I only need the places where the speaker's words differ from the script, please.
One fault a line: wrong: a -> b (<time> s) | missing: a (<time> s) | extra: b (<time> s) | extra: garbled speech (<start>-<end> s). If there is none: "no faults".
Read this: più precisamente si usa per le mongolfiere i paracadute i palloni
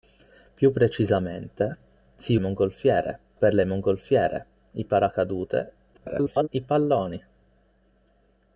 wrong: usa -> mongolfiere (2.4 s)
extra: garbled speech (5.9-6.5 s)